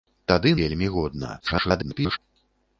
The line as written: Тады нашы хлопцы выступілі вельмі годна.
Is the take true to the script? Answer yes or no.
no